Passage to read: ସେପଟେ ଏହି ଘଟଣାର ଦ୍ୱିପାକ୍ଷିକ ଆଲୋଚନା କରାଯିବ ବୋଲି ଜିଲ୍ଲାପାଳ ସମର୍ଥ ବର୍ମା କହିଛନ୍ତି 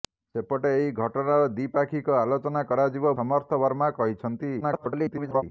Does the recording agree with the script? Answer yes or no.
no